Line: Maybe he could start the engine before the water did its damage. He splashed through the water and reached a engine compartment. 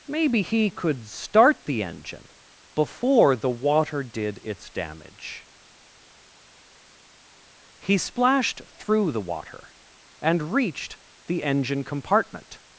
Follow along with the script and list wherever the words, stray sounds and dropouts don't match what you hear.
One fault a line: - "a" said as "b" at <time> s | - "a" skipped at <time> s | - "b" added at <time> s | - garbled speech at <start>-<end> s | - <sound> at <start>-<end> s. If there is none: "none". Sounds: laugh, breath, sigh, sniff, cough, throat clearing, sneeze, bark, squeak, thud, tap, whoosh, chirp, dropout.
- "a" said as "the" at 11.3 s